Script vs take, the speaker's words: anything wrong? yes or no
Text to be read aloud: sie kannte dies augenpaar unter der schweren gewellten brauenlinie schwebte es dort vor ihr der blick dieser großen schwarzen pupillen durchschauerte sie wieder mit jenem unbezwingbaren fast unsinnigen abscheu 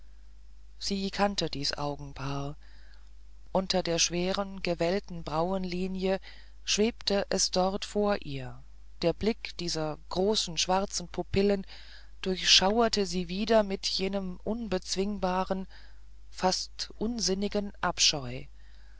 no